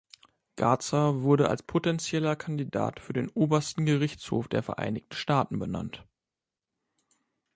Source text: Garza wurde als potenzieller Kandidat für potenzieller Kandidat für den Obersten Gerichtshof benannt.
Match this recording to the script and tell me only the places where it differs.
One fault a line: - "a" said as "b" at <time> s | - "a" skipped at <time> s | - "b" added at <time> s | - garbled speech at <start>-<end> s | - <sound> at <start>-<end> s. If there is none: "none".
- "potenzieller Kandidat für den Obersten Gerichtshof" said as "den Obersten Gerichtshof der Vereinigten Staaten" at 3.1 s